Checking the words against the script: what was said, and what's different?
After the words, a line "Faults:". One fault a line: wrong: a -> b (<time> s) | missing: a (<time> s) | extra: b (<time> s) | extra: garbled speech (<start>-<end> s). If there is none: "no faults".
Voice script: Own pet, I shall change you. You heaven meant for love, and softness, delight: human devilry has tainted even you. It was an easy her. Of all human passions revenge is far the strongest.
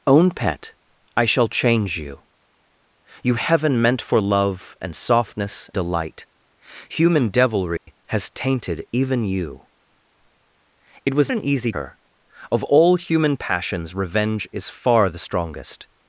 Own pet, I shall change you. You heaven meant for love, and softness, delight: human devilry has tainted even you. It was an easy her. Of all human passions revenge is far the strongest.
Faults:
no faults